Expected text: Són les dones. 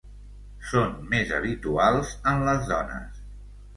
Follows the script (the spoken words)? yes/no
no